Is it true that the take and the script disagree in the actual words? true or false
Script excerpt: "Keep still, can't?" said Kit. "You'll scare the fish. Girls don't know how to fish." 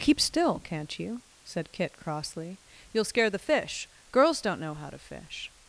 true